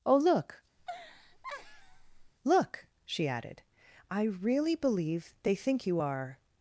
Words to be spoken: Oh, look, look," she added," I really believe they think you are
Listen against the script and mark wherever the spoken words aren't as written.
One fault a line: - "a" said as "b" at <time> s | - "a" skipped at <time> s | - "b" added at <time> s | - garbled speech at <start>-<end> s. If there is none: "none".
none